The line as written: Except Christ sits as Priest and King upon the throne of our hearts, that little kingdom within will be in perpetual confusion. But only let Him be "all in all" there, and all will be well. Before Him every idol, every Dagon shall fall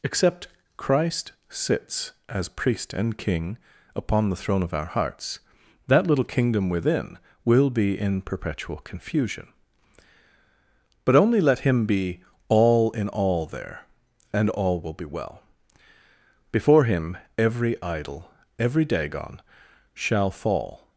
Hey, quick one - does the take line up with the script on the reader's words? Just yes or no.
yes